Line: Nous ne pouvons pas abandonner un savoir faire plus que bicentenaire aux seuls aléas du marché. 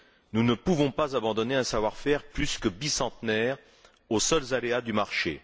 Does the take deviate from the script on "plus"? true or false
false